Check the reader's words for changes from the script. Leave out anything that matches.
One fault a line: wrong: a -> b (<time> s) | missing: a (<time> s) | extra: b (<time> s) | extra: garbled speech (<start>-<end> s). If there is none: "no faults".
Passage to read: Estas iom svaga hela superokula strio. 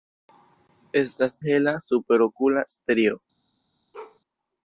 missing: iom svaga (1.4 s)